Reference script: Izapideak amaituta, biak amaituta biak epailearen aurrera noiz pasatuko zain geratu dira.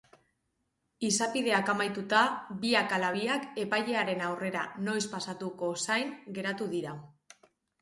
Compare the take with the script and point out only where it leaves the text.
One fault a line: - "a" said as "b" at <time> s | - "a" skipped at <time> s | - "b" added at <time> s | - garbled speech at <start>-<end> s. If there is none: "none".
- "amaituta" said as "ala" at 3.0 s